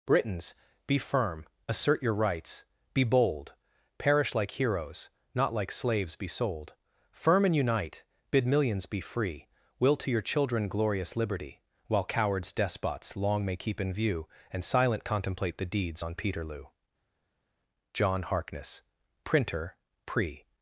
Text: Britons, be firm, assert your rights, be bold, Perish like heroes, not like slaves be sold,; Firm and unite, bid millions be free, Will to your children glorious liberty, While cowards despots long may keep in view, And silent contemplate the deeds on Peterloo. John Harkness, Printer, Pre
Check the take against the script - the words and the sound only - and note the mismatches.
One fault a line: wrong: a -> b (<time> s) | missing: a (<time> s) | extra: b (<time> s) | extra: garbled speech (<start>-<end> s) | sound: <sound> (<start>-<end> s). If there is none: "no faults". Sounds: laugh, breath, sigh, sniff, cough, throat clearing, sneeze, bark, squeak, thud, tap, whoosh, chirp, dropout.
no faults